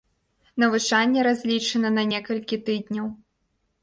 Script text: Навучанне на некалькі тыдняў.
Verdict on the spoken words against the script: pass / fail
fail